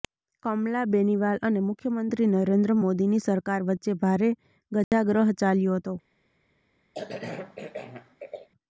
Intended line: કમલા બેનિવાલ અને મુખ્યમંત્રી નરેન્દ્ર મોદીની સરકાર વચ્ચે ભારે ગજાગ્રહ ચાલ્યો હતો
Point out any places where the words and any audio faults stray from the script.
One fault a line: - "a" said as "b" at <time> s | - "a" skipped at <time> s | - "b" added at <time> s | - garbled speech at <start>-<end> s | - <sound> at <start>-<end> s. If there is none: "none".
- dropout at 4.8-4.9 s
- cough at 6.9-8.5 s